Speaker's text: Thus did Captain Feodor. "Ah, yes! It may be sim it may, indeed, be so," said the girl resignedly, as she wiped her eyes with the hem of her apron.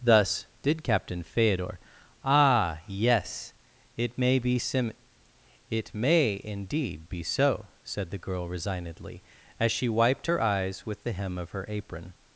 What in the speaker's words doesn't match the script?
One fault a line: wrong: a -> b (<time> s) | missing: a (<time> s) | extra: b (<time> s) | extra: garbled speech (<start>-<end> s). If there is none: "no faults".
no faults